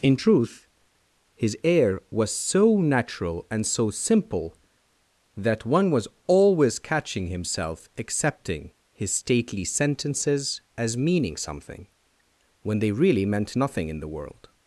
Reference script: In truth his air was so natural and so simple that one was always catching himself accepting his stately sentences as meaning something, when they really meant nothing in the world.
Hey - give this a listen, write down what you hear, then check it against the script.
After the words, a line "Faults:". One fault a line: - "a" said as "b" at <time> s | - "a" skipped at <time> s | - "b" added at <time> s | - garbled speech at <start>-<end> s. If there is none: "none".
In truth his air was so natural and so simple that one was always catching himself accepting his stately sentences as meaning something, when they really meant nothing in the world.
Faults:
none